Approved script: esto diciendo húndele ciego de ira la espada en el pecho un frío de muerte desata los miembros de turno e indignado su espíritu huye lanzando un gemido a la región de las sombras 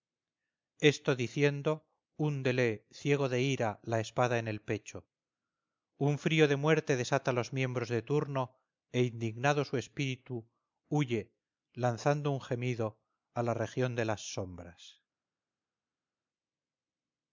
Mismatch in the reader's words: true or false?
false